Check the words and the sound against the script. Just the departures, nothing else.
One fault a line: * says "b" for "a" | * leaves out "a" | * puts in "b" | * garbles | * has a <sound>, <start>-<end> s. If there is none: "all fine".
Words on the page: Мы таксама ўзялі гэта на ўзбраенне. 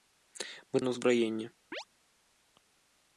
* leaves out "таксама ўзялі гэта"
* has a chirp, 1.7-1.8 s